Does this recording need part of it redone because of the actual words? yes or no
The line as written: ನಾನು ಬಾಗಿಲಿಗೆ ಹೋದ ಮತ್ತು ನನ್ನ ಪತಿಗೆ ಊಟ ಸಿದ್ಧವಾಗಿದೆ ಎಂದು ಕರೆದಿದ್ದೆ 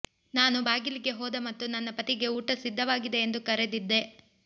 no